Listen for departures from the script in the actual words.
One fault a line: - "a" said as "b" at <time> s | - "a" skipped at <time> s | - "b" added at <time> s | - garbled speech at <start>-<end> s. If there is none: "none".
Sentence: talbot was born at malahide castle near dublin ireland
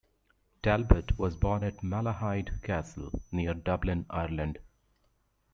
none